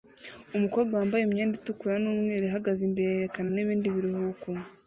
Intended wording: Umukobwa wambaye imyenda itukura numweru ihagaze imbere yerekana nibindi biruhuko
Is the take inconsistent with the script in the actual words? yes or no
no